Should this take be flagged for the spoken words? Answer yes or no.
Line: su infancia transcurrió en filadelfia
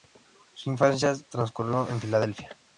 no